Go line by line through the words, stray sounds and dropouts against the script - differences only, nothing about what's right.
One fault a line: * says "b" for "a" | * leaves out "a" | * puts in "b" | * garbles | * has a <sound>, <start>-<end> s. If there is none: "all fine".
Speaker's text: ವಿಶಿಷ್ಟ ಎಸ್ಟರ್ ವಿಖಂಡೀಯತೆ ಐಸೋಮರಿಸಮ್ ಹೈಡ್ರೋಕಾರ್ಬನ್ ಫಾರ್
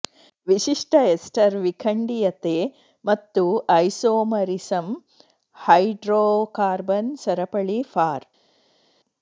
* puts in "ಮತ್ತು"
* puts in "ಸರಪಳಿ"